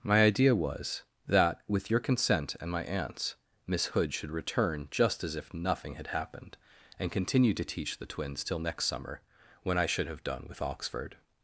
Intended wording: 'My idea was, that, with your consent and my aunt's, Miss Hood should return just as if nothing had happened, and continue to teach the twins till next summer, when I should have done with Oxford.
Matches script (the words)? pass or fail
pass